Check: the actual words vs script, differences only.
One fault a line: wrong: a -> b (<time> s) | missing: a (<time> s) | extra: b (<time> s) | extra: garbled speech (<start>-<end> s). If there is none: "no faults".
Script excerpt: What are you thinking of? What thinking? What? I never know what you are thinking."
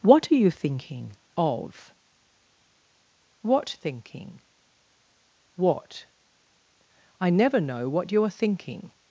no faults